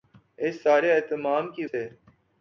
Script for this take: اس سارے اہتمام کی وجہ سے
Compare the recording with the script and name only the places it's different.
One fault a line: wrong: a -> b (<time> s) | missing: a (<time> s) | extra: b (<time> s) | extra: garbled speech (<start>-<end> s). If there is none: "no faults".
missing: وجہ (1.6 s)